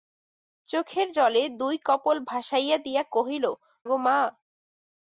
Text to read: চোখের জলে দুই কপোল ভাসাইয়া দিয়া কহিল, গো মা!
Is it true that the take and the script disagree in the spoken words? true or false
false